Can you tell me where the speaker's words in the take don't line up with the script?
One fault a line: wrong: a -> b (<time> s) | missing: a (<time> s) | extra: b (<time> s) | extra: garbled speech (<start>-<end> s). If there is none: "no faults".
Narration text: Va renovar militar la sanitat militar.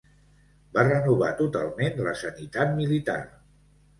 wrong: militar -> totalment (1.4 s)